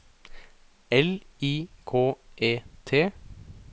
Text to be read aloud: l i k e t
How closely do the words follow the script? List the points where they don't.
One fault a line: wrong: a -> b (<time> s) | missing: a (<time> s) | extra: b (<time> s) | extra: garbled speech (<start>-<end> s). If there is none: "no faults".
no faults